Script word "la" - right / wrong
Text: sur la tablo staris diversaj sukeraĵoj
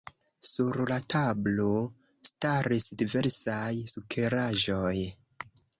right